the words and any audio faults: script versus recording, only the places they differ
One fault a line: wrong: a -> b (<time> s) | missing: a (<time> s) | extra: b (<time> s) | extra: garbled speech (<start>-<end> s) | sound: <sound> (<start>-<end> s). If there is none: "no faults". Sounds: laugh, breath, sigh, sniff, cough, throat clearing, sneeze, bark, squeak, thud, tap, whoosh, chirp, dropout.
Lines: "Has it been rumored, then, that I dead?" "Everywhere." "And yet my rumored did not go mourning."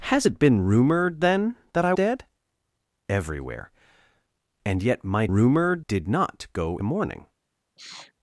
sound: sniff (7.8-8.1 s)